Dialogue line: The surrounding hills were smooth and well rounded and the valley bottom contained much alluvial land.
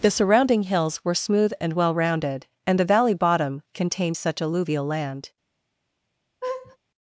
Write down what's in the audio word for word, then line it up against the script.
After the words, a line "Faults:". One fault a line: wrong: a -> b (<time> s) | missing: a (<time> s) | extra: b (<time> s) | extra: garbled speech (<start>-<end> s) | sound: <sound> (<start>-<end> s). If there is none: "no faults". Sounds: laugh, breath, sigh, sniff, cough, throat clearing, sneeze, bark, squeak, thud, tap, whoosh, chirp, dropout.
The surrounding hills were smooth and well rounded and the valley bottom contained such alluvial land.
Faults:
wrong: much -> such (4.1 s)
sound: laugh (6.4-6.8 s)